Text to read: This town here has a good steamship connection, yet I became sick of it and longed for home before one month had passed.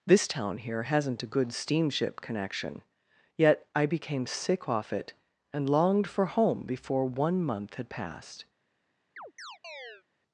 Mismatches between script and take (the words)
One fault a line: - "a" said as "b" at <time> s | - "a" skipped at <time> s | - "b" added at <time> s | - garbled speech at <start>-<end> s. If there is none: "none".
- "has" said as "hasn't" at 0.8 s
- "of" said as "off" at 4.7 s